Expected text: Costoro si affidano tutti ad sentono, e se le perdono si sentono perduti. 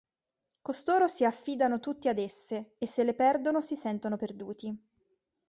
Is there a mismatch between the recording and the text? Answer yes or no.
yes